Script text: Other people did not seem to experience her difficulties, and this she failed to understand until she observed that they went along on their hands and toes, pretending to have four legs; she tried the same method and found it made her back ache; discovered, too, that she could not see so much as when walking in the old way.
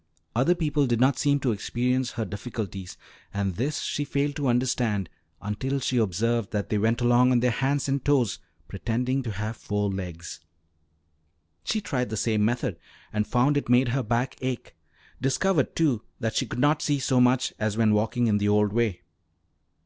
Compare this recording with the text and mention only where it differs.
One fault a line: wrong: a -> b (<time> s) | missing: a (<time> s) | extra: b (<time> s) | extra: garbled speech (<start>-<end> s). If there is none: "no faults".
no faults